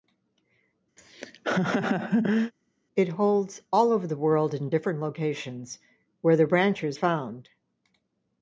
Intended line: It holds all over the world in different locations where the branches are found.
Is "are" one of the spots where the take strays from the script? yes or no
yes